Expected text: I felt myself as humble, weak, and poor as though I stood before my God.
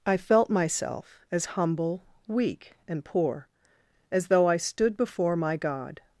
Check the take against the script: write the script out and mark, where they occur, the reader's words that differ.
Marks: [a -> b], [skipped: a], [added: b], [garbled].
I felt myself as humble, weak, and poor as though I stood before my God.